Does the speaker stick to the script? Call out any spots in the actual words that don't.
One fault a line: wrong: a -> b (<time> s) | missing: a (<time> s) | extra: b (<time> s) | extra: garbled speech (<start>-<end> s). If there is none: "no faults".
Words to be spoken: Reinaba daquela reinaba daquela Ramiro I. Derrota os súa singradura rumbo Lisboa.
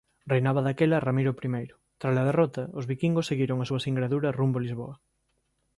missing: reinaba daquela (1.0 s)
extra: Trala (2.0 s)
extra: viquingos seguiron a (2.9 s)